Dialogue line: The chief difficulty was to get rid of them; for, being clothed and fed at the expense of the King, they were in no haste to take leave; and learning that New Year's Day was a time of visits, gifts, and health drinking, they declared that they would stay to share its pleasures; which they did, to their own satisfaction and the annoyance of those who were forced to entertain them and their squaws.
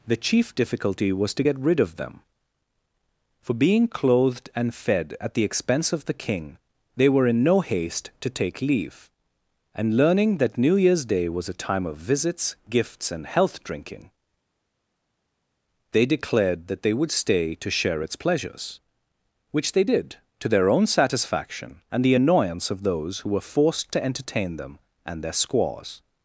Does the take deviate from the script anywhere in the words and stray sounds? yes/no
no